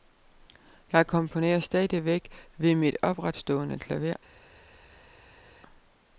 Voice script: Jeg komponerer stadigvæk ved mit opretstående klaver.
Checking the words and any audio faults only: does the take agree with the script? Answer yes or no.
yes